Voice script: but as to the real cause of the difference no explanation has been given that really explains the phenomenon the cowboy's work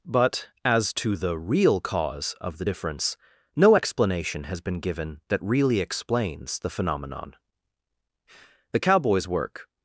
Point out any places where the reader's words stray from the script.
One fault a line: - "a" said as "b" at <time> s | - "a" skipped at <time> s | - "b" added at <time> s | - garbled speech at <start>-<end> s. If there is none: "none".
none